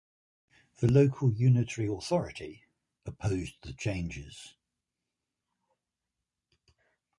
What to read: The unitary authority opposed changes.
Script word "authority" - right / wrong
right